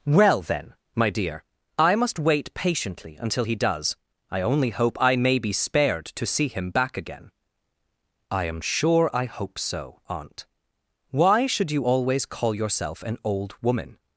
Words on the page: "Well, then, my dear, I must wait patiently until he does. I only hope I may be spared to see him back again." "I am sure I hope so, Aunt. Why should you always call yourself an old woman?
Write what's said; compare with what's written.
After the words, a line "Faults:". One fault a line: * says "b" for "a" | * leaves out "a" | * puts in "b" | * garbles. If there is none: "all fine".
"Well, then, my dear, I must wait patiently until he does. I only hope I may be spared to see him back again." "I am sure I hope so, Aunt. Why should you always call yourself an old woman?
Faults:
all fine